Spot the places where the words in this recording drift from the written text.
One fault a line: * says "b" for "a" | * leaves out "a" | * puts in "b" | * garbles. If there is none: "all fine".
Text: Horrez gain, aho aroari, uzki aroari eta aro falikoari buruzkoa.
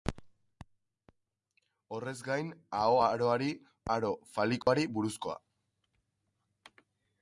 * leaves out "uzki aroari eta"